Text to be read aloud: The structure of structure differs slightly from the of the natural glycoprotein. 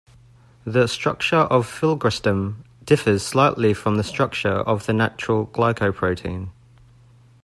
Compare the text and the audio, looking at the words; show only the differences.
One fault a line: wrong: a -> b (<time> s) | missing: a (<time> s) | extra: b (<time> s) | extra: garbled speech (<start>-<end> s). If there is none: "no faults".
wrong: structure -> filgrastim (1.7 s)
extra: structure (4.0 s)